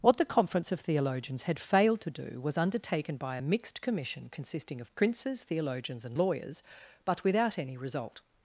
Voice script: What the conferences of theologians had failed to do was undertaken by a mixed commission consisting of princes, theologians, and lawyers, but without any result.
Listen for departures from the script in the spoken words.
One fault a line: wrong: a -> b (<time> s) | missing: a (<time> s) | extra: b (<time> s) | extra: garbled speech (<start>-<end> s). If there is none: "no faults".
wrong: conferences -> conference (0.2 s)